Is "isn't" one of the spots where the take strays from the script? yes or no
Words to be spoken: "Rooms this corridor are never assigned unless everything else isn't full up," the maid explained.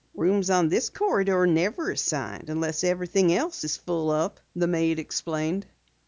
yes